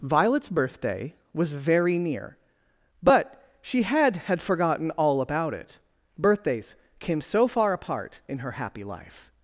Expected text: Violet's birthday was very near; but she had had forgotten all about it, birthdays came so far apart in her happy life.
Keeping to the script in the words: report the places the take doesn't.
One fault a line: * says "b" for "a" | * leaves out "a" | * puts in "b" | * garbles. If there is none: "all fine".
all fine